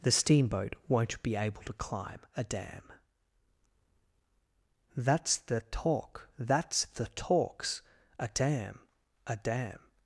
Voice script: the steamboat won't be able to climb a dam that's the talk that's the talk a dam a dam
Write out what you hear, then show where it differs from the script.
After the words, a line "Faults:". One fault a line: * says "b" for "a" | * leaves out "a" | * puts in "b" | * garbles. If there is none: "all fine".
the steamboat won't be able to climb a dam that's the talk that's the talks a dam a dam
Faults:
* says "talks" for "talk"